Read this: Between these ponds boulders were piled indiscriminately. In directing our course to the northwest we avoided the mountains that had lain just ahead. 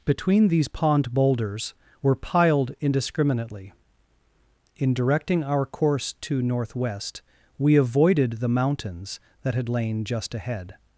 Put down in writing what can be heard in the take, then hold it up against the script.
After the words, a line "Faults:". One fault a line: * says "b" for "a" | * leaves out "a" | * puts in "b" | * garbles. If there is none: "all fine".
Between these pond boulders were piled indiscriminately. In directing our course to northwest we avoided the mountains that had lain just ahead.
Faults:
* says "pond" for "ponds"
* leaves out "the"